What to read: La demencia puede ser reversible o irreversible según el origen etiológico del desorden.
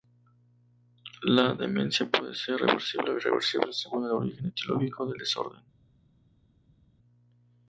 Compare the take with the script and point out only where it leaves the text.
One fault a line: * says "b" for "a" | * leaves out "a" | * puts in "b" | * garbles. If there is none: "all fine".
all fine